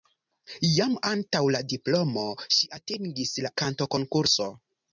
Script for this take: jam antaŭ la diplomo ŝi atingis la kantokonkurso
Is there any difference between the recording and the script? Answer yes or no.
no